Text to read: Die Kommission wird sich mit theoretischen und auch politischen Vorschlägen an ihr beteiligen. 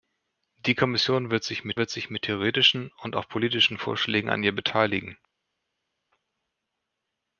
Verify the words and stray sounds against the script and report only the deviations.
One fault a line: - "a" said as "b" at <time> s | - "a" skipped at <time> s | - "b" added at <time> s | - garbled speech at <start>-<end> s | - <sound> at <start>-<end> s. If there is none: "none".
- "wird sich mit" added at 1.8 s